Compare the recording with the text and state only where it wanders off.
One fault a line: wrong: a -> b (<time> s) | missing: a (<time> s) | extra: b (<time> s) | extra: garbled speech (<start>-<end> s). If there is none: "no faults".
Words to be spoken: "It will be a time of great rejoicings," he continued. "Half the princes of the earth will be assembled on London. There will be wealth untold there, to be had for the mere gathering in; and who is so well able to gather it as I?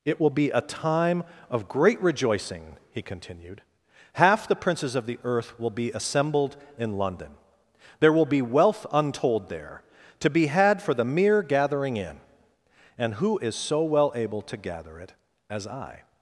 wrong: rejoicings -> rejoicing (2.0 s)
wrong: on -> in (6.8 s)